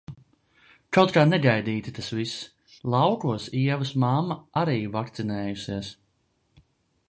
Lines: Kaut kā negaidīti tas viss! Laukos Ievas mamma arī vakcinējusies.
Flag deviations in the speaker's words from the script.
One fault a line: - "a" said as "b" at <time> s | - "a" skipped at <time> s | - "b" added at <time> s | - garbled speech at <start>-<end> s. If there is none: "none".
none